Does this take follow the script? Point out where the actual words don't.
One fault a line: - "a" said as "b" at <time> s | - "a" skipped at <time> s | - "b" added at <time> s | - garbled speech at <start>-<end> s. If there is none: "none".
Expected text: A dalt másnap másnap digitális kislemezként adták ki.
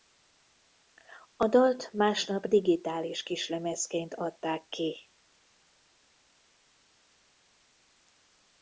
- "másnap" skipped at 2.5 s